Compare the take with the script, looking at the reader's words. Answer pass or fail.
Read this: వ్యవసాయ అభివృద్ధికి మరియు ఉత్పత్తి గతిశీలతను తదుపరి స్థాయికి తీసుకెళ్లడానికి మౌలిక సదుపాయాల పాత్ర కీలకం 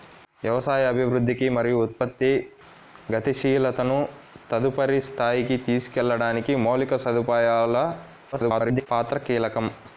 fail